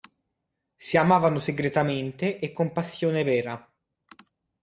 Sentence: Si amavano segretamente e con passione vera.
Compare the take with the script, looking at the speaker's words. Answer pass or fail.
pass